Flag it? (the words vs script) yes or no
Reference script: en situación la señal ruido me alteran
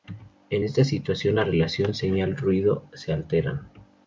yes